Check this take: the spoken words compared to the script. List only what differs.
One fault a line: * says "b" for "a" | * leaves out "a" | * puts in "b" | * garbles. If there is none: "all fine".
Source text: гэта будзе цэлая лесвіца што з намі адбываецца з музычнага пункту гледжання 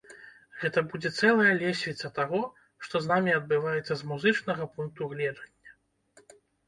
* puts in "таго"